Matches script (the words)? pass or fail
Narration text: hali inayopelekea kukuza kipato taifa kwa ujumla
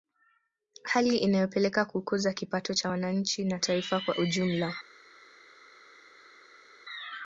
fail